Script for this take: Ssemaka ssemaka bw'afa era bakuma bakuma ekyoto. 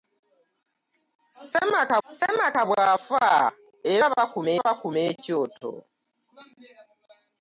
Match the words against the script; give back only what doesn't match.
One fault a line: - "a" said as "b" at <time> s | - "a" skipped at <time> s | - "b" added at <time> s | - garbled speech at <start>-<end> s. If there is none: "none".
none